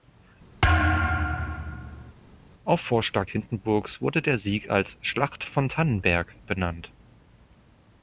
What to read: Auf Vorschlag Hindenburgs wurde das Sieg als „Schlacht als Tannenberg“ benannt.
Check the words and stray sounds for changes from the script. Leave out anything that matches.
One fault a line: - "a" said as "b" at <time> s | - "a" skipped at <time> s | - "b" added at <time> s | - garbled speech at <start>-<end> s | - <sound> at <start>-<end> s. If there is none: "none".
- thud at 0.6-2.1 s
- "das" said as "der" at 4.2 s
- "als" said as "von" at 5.5 s